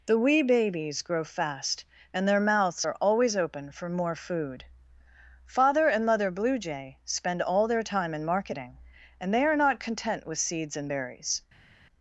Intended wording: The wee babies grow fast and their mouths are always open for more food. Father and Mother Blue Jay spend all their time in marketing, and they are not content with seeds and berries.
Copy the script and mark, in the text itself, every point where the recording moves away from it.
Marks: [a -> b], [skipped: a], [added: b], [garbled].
The wee babies grow fast and their mouths are always open for more food. Father and Mother Blue Jay spend all their time in marketing, and they are not content with seeds and berries.